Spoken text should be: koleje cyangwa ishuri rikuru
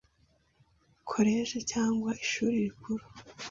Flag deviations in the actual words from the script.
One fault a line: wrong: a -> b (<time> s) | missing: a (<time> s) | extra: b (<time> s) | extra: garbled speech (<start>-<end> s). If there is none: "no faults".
no faults